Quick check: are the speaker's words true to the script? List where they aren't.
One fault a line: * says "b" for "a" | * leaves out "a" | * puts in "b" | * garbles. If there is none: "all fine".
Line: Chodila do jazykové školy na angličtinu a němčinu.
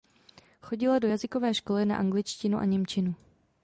all fine